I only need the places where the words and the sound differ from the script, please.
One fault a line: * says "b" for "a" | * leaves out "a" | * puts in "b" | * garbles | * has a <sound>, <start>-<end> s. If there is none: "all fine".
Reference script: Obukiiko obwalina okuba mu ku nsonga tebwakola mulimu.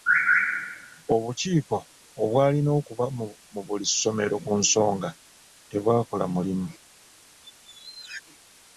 * puts in "buli ssomero"
* has a squeak, 7.4-8.2 s